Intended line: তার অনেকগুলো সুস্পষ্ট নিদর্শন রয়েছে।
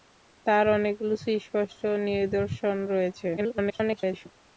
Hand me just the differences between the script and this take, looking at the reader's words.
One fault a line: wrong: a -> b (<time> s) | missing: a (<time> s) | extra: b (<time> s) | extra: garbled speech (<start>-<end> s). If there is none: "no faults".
extra: garbled speech (3.4-4.3 s)